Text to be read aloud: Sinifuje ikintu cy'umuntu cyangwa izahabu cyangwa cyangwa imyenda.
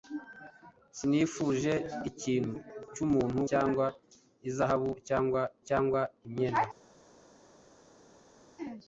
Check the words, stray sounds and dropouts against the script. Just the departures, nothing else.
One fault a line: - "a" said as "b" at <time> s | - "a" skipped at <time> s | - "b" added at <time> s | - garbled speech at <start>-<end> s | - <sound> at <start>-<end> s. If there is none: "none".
none